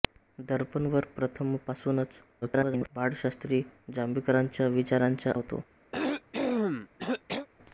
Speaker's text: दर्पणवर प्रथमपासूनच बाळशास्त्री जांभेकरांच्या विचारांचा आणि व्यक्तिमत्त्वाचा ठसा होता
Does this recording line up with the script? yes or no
no